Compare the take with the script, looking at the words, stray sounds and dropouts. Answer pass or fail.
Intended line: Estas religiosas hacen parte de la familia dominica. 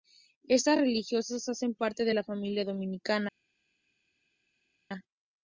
pass